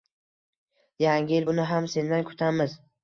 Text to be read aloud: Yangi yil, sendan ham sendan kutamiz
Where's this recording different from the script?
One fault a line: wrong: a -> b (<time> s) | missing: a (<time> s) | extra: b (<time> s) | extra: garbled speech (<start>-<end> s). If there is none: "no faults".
wrong: sendan -> buni (1.5 s)